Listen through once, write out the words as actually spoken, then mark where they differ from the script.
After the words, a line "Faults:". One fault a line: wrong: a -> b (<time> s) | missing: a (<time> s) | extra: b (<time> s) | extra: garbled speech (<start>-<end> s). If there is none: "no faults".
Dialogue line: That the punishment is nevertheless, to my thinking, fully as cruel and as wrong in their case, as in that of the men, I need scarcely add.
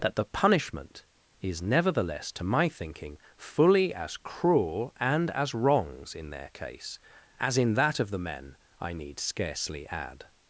That the punishment is nevertheless, to my thinking, fully as cruel and as wrongs in their case, as in that of the men, I need scarcely add.
Faults:
wrong: wrong -> wrongs (5.5 s)